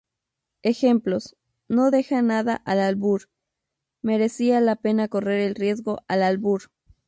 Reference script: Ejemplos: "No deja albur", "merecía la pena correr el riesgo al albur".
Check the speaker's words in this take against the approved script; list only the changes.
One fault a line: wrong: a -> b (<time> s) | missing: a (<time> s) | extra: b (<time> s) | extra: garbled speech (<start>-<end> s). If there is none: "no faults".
extra: nada al (2.2 s)